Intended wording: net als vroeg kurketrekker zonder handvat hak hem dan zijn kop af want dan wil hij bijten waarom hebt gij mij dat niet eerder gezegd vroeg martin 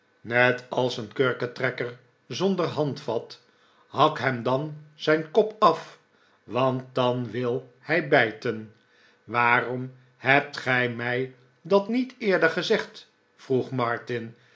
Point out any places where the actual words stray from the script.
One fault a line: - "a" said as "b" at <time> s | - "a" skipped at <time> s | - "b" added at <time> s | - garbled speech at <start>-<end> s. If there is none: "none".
- "vroeg" said as "een" at 1.0 s